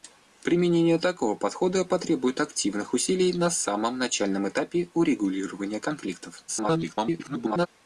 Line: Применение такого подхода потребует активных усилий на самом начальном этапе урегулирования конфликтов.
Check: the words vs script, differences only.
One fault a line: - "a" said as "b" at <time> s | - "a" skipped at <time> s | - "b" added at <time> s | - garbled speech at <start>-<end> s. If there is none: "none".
- garbled speech at 6.5-7.7 s